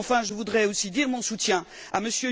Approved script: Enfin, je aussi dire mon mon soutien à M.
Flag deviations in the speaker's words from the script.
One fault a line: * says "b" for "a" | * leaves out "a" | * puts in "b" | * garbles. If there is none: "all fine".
* puts in "voudrais"
* leaves out "mon"